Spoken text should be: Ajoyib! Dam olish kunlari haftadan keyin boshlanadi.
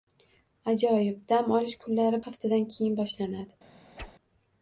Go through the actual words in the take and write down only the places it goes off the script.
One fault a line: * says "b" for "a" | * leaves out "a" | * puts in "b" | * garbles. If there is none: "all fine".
all fine